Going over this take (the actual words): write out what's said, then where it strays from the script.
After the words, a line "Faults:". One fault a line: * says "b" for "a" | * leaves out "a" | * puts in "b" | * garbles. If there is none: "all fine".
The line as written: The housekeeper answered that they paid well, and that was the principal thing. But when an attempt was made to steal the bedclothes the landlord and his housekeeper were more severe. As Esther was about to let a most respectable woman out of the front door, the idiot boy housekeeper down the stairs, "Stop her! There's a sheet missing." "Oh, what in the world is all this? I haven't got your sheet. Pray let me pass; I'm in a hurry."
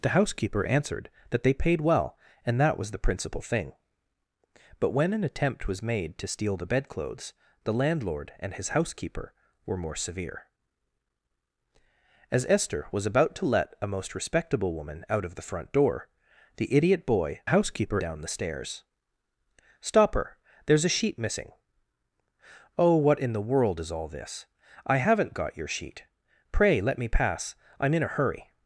The housekeeper answered that they paid well, and that was the principal thing. But when an attempt was made to steal the bedclothes the landlord and his housekeeper were more severe. As Esther was about to let a most respectable woman out of the front door, the idiot boy housekeeper down the stairs, "Stop her! There's a sheet missing." "Oh, what in the world is all this? I haven't got your sheet. Pray let me pass; I'm in a hurry."
Faults:
all fine